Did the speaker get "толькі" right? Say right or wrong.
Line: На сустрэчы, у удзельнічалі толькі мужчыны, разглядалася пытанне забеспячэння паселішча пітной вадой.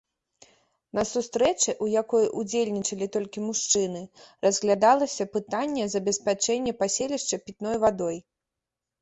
right